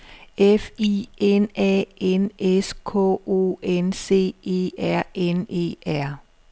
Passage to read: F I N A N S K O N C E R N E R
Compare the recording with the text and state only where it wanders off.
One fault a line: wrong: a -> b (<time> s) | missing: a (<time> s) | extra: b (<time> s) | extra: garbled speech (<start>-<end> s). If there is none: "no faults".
no faults